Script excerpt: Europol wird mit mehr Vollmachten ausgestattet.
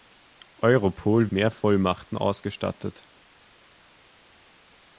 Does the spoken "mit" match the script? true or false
false